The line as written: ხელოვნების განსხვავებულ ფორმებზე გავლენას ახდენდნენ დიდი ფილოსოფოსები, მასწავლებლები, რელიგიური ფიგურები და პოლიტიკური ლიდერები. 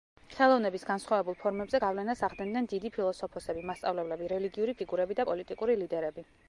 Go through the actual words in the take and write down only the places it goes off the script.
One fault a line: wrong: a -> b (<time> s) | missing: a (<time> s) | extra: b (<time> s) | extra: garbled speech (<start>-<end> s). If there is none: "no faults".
no faults